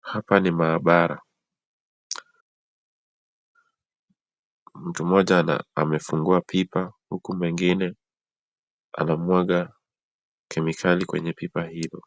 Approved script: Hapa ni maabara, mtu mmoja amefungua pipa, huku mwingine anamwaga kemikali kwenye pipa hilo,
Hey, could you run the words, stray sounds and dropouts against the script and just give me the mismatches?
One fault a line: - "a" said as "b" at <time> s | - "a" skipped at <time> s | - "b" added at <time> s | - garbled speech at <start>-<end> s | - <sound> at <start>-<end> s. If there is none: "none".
none